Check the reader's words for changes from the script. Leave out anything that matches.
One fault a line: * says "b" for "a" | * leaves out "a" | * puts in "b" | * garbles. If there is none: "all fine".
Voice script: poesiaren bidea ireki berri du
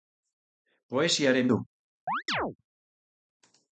* leaves out "bidea ireki berri"